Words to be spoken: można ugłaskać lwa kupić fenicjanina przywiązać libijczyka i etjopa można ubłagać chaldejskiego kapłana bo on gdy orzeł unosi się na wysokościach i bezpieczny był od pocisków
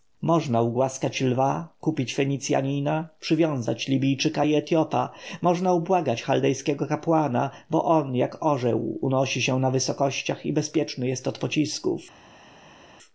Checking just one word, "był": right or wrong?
wrong